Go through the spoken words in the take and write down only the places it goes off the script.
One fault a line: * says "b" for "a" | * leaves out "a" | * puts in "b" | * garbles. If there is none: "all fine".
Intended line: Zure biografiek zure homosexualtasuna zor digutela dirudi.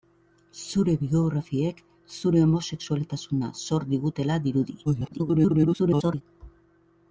* garbles